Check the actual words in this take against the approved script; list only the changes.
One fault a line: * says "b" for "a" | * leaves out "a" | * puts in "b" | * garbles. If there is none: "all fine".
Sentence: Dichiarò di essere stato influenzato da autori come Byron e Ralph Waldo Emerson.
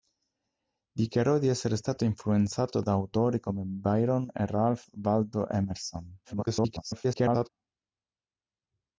* garbles